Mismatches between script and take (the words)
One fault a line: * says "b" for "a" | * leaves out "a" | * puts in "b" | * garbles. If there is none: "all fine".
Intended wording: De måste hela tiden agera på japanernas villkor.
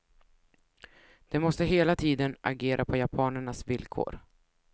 all fine